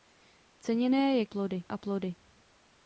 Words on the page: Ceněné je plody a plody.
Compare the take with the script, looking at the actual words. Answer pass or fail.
pass